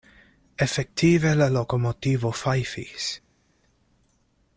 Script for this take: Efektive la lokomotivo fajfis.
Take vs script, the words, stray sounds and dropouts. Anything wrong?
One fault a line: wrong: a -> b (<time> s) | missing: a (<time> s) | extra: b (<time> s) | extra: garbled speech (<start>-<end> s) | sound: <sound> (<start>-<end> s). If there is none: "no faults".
no faults